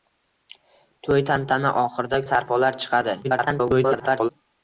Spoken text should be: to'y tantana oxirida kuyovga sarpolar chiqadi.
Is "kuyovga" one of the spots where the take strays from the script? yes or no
yes